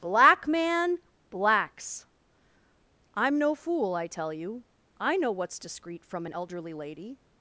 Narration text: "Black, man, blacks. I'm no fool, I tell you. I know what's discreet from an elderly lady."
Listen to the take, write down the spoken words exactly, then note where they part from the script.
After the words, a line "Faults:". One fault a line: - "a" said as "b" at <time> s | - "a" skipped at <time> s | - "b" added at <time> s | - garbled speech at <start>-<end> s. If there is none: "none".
"Black, man, blacks. I'm no fool, I tell you. I know what's discreet from an elderly lady."
Faults:
none